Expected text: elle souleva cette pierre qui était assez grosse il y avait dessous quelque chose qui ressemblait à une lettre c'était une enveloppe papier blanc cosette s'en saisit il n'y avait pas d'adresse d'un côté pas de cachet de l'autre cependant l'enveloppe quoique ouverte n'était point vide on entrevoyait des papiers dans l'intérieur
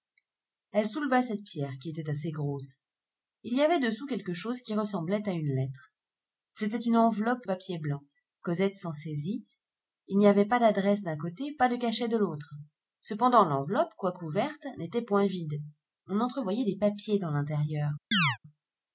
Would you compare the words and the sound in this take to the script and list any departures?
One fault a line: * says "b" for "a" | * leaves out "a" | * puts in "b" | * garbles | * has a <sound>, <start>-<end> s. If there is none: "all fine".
* has a chirp, 18.1-18.4 s